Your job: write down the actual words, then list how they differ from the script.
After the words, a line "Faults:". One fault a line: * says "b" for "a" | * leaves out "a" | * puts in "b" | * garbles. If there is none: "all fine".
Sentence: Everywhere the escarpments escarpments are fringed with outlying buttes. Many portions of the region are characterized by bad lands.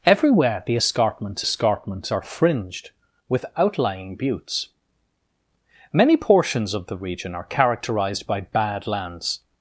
Everywhere the escarpments escarpments are fringed with outlying buttes. Many portions of the region are characterized by bad lands.
Faults:
all fine